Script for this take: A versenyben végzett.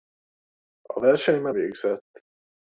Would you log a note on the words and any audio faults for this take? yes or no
no